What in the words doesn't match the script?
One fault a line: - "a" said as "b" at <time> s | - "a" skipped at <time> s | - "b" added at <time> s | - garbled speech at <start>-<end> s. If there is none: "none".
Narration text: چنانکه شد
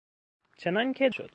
none